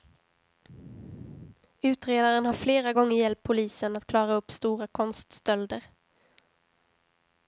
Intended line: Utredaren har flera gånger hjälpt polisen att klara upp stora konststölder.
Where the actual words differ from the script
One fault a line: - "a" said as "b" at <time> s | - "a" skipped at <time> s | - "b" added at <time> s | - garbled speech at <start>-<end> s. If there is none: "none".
none